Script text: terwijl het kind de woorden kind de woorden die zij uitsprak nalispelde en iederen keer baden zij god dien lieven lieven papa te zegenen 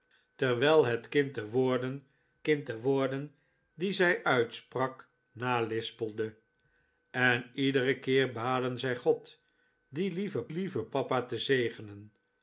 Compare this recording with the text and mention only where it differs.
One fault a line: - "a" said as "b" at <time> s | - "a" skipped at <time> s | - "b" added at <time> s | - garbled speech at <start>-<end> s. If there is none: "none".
none